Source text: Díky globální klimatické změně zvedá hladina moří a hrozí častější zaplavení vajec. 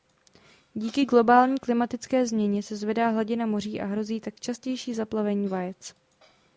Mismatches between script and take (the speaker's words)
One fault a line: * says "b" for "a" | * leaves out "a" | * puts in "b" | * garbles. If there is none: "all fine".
* puts in "se"
* puts in "tak"